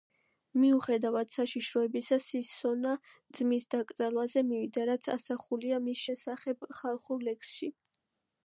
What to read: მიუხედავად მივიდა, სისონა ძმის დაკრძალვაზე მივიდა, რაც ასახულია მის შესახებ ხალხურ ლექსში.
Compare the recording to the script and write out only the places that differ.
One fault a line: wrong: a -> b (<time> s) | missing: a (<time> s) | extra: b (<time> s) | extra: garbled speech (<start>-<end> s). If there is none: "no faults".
wrong: მივიდა -> საშიშროებისა (1.3 s)